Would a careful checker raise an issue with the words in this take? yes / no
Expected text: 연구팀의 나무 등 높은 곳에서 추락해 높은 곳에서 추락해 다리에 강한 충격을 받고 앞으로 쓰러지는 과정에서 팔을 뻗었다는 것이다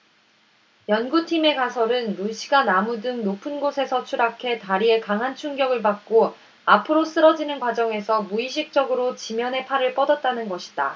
yes